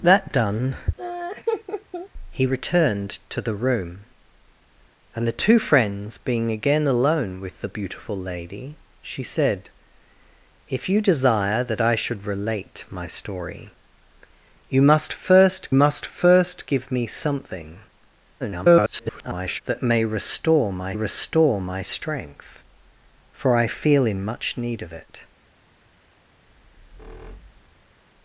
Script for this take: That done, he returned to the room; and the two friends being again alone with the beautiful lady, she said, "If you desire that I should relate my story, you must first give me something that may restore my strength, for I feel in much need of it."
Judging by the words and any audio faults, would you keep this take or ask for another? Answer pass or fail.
fail